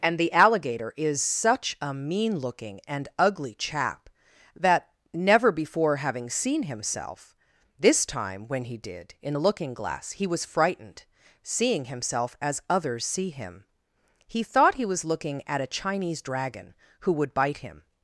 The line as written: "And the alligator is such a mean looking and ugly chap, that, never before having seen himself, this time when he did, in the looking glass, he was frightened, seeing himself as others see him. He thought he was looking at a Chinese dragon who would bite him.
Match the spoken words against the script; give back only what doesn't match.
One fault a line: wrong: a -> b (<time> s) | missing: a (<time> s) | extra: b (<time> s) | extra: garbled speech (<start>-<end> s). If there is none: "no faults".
no faults